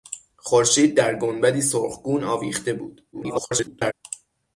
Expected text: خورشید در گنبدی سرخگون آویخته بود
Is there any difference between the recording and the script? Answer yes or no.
yes